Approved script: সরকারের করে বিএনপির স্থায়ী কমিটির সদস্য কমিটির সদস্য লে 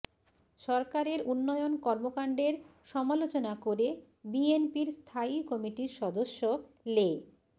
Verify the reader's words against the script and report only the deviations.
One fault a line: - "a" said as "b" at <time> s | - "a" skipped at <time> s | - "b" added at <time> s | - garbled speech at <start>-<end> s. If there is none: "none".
- "উন্নয়ন কর্মকাণ্ডের সমালোচনা" added at 1.3 s
- "কমিটির সদস্য" skipped at 6.4 s